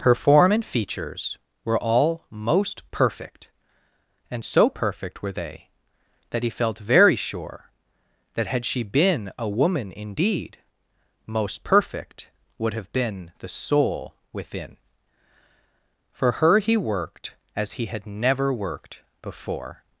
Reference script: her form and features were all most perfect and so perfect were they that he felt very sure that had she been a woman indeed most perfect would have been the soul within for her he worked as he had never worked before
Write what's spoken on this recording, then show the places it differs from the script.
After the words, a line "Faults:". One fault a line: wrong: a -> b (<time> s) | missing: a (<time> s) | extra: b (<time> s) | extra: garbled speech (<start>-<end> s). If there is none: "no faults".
her form and features were all most perfect and so perfect were they that he felt very sure that had she been a woman indeed most perfect would have been the soul within for her he worked as he had never worked before
Faults:
no faults